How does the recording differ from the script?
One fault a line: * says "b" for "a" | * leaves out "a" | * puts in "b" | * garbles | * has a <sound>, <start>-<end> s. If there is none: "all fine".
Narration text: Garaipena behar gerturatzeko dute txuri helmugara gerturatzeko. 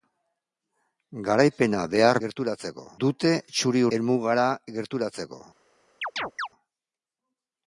* has a chirp, 6.0-6.5 s